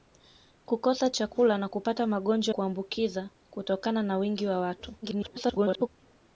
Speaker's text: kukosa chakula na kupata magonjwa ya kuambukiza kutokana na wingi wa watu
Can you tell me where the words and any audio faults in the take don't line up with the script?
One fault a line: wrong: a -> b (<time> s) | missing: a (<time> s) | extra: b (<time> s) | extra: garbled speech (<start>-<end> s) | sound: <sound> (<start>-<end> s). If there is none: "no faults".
missing: ya (2.5 s)
extra: garbled speech (5.0-5.9 s)